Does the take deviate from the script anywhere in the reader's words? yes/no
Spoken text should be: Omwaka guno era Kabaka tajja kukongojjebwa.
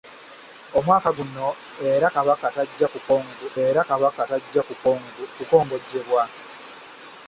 yes